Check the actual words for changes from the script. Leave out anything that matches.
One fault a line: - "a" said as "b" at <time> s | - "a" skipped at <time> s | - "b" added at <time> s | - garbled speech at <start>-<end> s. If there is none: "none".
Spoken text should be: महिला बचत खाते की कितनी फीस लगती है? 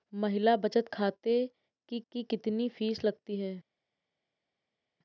- "की" added at 2.1 s